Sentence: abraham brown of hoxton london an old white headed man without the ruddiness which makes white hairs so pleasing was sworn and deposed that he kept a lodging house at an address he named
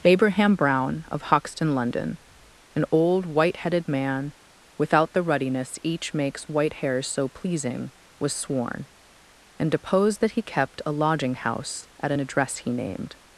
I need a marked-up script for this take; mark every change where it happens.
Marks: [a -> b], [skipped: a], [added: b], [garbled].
abraham brown of hoxton london an old white headed man without the ruddiness [which -> each] makes white hairs so pleasing was sworn and deposed that he kept a lodging house at an address he named